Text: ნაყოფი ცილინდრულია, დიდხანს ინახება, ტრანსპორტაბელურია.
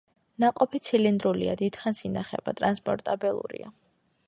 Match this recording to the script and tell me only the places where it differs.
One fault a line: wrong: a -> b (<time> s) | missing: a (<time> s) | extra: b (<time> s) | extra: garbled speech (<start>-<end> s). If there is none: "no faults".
no faults